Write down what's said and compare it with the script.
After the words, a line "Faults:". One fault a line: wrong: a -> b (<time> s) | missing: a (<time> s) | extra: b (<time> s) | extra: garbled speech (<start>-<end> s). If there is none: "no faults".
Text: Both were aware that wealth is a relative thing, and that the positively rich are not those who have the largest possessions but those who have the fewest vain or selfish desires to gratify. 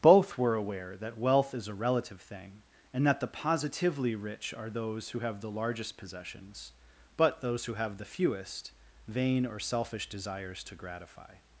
Both were aware that wealth is a relative thing, and that the positively rich are those who have the largest possessions but those who have the fewest vain or selfish desires to gratify.
Faults:
missing: not (4.7 s)